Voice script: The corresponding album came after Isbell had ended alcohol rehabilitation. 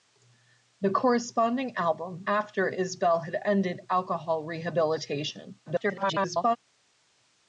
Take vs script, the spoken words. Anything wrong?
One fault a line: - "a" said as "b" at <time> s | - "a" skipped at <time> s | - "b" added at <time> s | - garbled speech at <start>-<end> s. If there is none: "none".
- "came" skipped at 2.2 s
- garbled speech at 5.7-6.6 s